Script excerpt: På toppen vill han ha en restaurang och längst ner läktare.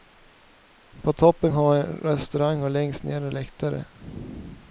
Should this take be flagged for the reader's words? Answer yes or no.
yes